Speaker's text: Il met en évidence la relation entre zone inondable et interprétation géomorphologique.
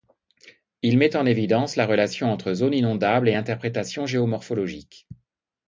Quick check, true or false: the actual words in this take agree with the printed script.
true